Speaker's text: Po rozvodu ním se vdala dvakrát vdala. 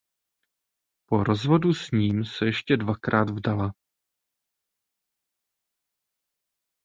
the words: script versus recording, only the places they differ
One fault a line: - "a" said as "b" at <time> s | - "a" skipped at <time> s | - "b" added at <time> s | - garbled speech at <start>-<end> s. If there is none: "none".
- "s" added at 1.7 s
- "vdala" said as "ještě" at 2.5 s